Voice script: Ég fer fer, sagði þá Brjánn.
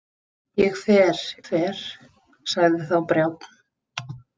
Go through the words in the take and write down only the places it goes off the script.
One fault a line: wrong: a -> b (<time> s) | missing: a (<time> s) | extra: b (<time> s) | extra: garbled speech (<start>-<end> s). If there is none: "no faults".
no faults